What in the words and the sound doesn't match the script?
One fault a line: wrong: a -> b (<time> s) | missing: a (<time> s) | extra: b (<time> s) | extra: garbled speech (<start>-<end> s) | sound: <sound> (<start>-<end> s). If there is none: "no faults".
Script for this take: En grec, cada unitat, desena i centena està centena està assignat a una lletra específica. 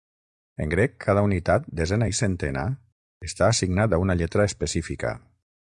missing: centena està (3.5 s)